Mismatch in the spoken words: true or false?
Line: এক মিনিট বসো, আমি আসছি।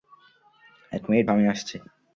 true